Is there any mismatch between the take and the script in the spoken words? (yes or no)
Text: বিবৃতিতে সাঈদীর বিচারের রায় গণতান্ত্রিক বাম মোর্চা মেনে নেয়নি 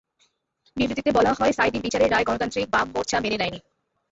yes